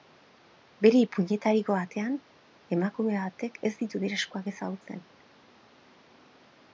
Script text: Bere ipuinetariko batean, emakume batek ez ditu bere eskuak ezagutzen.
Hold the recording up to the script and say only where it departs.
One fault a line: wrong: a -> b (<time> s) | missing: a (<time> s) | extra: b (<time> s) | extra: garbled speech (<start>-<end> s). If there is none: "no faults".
no faults